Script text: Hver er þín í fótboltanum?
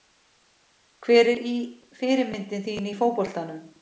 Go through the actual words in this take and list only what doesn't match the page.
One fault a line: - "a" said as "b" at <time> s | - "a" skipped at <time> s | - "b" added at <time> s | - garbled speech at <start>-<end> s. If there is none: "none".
- "fyrirmynd" added at 2.0 s